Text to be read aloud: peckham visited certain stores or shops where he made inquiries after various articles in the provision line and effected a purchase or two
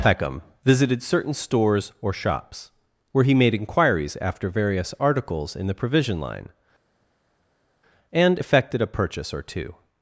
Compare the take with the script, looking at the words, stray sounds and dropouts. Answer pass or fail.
pass